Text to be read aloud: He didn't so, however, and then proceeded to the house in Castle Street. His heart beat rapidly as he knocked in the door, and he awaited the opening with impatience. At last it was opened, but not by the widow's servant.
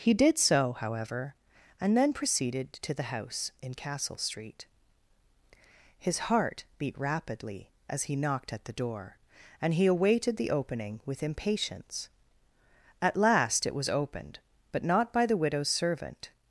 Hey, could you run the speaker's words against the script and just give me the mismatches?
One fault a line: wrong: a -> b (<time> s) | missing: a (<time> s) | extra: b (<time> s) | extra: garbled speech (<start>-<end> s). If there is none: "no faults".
wrong: didn't -> did (0.1 s)
wrong: in -> at (8.5 s)